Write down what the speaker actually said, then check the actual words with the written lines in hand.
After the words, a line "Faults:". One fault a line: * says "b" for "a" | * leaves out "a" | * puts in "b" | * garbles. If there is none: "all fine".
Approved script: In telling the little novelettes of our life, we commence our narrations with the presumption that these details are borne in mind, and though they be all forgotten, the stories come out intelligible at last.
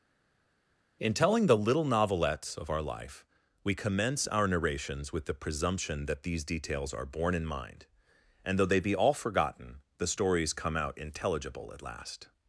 In telling the little novelettes of our life, we commence our narrations with the presumption that these details are borne in mind, and though they be all forgotten, the stories come out intelligible at last.
Faults:
all fine